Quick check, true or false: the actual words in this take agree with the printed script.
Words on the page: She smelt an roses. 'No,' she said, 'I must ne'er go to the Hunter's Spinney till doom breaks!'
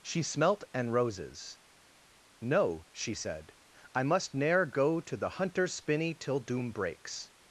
true